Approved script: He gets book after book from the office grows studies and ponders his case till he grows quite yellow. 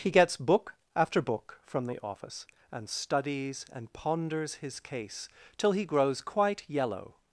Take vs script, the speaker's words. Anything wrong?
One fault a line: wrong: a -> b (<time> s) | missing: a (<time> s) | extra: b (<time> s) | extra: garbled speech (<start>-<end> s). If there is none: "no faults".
wrong: grows -> and (2.7 s)